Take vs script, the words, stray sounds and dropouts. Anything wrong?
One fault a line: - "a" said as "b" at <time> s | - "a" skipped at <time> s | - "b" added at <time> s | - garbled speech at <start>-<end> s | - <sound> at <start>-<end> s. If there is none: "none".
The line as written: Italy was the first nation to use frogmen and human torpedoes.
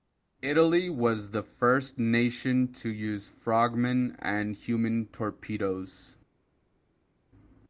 none